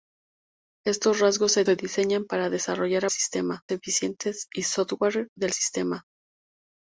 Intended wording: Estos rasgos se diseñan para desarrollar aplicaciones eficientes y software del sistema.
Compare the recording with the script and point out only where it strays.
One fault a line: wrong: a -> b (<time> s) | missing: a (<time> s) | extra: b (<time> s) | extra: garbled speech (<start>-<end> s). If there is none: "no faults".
extra: se (1.6 s)
wrong: aplicaciones -> sistema (3.1 s)